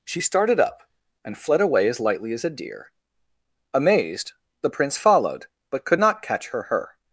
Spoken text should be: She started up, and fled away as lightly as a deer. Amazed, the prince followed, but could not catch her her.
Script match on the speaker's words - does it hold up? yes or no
yes